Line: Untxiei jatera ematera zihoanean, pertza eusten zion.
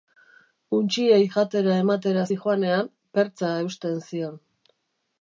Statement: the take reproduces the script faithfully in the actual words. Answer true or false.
true